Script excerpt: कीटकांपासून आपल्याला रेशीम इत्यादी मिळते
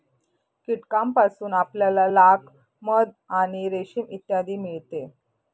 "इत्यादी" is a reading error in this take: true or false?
false